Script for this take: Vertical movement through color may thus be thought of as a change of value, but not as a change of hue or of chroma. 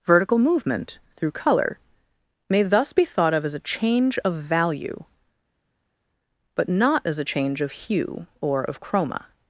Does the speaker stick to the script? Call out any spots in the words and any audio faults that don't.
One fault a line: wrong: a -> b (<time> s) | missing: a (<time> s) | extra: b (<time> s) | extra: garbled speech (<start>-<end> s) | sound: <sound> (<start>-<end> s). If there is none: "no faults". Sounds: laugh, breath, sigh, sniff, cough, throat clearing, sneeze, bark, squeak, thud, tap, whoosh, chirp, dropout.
no faults